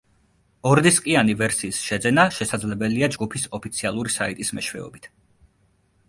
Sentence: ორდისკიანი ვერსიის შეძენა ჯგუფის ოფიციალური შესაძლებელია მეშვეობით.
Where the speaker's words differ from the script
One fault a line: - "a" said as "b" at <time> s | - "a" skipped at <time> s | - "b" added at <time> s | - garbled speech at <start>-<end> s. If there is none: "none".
- "შესაძლებელია" added at 2.4 s
- "შესაძლებელია" said as "საიტის" at 4.2 s